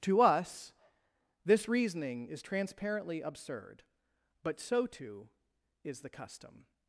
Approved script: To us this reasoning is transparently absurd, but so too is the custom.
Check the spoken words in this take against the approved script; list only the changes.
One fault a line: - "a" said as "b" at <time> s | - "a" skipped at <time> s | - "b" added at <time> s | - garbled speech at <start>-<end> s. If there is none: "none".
none